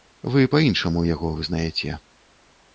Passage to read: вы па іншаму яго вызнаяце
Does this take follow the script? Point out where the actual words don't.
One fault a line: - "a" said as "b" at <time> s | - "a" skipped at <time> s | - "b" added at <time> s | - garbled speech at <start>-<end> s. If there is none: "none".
none